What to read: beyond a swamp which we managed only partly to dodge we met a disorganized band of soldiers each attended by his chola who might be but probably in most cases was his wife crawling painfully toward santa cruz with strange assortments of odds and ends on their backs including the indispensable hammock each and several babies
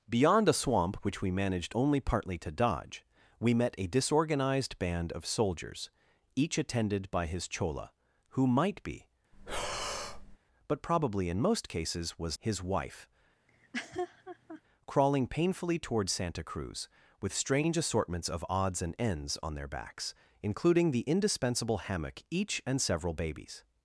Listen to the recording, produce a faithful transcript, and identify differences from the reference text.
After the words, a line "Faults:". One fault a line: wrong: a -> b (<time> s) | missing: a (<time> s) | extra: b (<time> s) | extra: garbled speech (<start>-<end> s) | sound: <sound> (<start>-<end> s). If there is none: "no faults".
beyond a swamp which we managed only partly to dodge we met a disorganized band of soldiers each attended by his chola who might be but probably in most cases was his wife crawling painfully toward santa cruz with strange assortments of odds and ends on their backs including the indispensable hammock each and several babies
Faults:
sound: breath (9.3-10.4 s)
sound: laugh (13.5-14.6 s)